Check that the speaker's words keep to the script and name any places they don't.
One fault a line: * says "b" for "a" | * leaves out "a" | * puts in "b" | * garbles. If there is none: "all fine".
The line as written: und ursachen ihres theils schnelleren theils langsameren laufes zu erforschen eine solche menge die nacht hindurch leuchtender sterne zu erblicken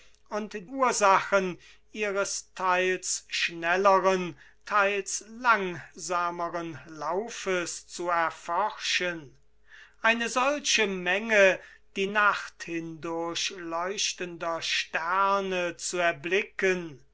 all fine